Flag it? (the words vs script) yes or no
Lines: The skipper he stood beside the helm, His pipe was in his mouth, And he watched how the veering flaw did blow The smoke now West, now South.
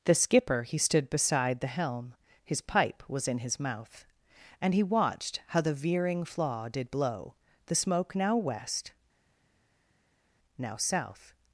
no